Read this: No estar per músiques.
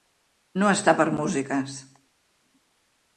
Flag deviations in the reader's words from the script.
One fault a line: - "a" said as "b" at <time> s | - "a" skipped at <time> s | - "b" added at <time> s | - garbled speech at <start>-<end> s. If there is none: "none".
none